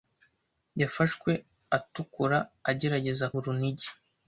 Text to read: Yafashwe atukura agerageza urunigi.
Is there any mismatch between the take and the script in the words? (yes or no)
no